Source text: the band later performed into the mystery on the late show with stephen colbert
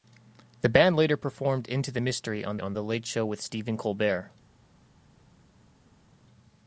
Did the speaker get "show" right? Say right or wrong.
right